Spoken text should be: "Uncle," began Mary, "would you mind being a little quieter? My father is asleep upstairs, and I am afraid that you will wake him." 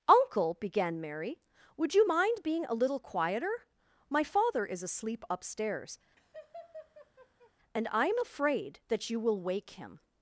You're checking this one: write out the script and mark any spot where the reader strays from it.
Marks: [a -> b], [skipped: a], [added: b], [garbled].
"Uncle," began Mary, "would you mind being a little quieter? My father is asleep upstairs, and I am afraid that you will wake him."